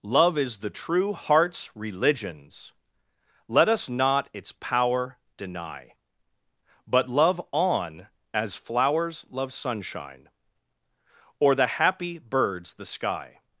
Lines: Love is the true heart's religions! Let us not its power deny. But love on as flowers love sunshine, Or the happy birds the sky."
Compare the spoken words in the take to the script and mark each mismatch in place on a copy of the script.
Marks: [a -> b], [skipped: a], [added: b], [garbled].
Love is the true heart's religions! Let us not its power deny. But love on as flowers love sunshine, Or the happy birds the sky."